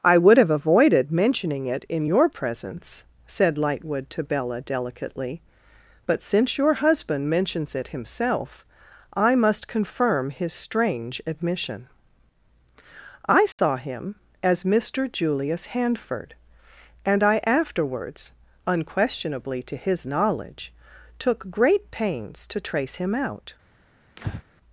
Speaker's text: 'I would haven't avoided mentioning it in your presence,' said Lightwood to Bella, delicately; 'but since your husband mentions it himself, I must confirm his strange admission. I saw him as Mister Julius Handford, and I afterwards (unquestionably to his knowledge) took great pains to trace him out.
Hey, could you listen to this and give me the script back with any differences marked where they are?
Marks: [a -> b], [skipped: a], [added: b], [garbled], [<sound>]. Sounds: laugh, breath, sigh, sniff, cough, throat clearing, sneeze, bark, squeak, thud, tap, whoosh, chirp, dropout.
'I would [haven't -> have] avoided mentioning it in your presence,' said Lightwood to Bella, delicately; 'but since your husband mentions it himself, I must confirm his strange admission. I saw [dropout] him as Mister Julius Handford, and I afterwards (unquestionably to his knowledge) took great pains to trace him out. [breath]